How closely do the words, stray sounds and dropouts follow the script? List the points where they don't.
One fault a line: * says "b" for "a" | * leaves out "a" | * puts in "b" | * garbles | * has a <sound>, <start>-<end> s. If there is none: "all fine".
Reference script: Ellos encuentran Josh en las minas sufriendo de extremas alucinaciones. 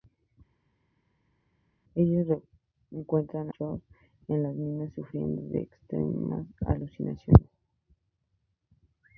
all fine